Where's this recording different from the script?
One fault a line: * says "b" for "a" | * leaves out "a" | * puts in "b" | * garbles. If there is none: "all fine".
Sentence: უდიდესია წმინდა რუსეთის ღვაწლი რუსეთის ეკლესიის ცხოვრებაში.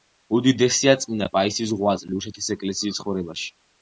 * says "პაისის" for "რუსეთის"